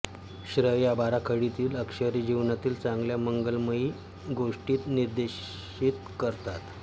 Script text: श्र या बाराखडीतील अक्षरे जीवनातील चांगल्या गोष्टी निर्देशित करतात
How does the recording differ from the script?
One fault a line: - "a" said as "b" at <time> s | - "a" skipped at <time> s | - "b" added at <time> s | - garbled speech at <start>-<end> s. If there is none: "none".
- "मंगलमय" added at 3.2 s